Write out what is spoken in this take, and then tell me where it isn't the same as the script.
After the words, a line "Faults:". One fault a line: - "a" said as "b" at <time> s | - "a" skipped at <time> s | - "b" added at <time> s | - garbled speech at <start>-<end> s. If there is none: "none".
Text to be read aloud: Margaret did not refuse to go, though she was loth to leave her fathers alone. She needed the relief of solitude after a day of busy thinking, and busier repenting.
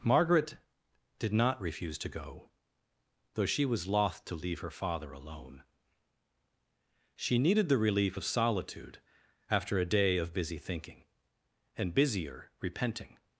Margaret did not refuse to go, though she was loth to leave her father alone. She needed the relief of solitude after a day of busy thinking, and busier repenting.
Faults:
- "fathers" said as "father" at 4.7 s